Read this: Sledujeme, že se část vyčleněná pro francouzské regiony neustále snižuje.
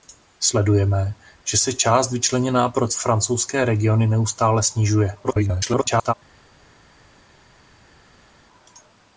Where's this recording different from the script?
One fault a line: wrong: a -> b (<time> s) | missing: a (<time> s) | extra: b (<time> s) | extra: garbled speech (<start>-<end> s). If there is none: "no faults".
extra: garbled speech (5.2-6.1 s)